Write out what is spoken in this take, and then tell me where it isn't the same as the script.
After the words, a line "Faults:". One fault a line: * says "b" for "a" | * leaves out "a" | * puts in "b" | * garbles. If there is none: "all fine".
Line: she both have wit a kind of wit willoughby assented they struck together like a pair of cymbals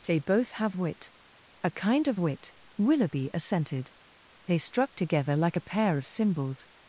they both have wit a kind of wit willoughby assented they struck together like a pair of cymbals
Faults:
* says "they" for "she"